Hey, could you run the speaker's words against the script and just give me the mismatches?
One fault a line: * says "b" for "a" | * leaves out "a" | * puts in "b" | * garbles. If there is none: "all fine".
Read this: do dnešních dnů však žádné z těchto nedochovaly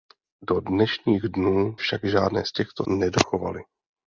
all fine